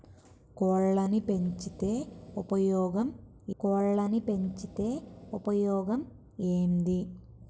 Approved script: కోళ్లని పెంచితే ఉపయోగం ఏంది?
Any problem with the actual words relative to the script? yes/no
yes